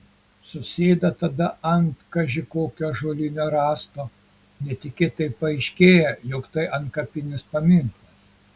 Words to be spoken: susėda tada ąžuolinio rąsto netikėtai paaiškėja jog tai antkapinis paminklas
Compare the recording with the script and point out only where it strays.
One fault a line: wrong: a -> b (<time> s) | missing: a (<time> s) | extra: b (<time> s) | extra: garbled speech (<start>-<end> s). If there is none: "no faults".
extra: ant kaži kokio (1.7 s)